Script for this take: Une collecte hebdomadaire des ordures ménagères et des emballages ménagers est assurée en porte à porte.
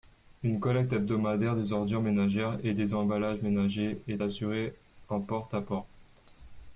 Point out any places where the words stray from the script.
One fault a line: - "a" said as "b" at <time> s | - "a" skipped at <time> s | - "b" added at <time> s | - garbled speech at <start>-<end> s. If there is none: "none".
none